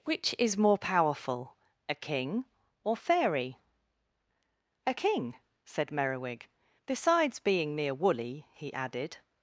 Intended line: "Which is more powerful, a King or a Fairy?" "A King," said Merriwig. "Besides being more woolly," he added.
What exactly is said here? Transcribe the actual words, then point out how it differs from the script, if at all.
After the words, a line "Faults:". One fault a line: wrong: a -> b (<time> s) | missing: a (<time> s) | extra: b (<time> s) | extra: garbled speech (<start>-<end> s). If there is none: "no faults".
"Which is more powerful, a King or Fairy?" "A King," said Merriwig. "Besides being mere woolly," he added.
Faults:
missing: a (3.0 s)
wrong: more -> mere (7.7 s)